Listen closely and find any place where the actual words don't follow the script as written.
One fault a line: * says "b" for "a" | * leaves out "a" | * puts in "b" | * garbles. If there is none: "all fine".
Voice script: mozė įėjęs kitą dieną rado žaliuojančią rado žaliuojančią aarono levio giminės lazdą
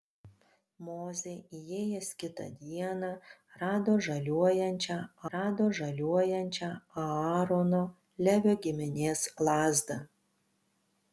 all fine